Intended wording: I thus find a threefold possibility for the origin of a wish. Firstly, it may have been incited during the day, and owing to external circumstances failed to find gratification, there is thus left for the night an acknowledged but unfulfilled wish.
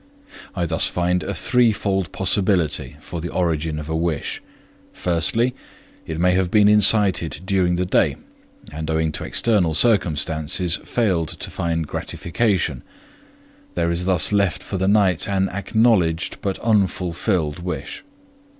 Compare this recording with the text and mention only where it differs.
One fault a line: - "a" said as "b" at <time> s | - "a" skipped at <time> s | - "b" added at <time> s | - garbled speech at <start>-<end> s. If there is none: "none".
none